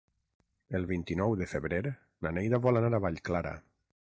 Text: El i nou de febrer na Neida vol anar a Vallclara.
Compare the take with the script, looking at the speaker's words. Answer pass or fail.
fail